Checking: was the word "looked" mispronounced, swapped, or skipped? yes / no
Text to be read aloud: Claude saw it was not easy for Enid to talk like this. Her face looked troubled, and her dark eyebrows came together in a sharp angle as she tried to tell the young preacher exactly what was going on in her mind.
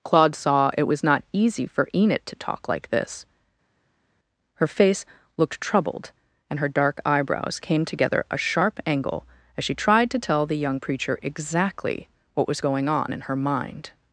no